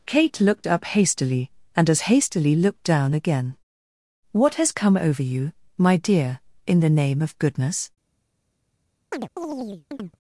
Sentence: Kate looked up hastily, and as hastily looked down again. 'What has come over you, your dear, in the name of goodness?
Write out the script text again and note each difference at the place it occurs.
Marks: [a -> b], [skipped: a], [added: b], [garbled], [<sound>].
Kate looked up hastily, and as hastily looked down again. 'What has come over you, [your -> my] dear, in the name of goodness? [chirp]